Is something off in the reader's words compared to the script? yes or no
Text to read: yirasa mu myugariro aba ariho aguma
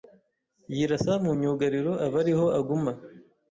no